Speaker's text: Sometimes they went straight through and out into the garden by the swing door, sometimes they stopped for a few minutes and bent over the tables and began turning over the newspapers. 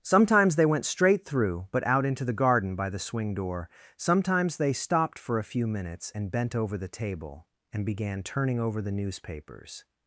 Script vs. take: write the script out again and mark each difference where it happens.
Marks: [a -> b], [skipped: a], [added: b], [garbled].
Sometimes they went straight through [and -> but] out into the garden by the swing door, sometimes they stopped for a few minutes and bent over the [tables -> table] and began turning over the newspapers.